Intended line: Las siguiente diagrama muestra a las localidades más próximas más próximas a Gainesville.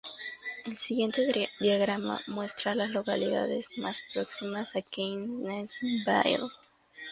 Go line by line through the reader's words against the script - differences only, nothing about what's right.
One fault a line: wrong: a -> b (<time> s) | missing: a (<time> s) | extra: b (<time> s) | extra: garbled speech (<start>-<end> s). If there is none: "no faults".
wrong: Las -> El (0.7 s)
missing: más próximas (4.8 s)